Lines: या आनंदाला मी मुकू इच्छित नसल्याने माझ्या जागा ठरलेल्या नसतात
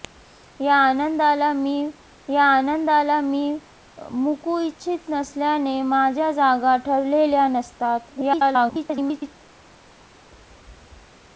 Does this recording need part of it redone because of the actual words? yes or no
yes